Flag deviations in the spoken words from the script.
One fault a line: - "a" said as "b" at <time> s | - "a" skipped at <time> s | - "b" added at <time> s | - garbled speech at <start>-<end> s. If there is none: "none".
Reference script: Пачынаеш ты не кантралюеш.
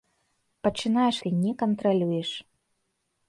none